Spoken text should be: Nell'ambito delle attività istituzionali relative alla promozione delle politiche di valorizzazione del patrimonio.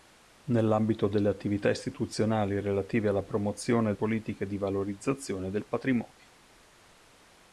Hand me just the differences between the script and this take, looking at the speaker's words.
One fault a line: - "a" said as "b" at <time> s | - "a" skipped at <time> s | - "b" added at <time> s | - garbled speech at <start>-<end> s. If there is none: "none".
- "delle" skipped at 3.9 s